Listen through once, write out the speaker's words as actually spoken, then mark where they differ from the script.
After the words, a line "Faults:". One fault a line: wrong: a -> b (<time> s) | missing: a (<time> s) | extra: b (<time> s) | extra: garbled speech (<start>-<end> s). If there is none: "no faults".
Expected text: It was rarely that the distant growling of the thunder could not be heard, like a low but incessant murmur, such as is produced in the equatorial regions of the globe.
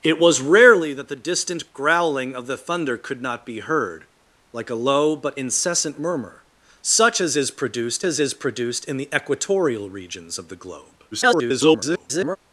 It was rarely that the distant growling of the thunder could not be heard, like a low but incessant murmur, such as is produced as is produced in the equatorial regions of the globe. [garbled]
Faults:
extra: as is produced (8.0 s)
extra: garbled speech (11.1-12.4 s)